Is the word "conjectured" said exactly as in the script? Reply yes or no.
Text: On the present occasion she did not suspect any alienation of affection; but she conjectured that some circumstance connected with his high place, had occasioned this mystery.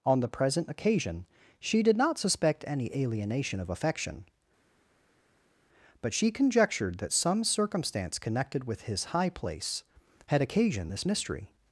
yes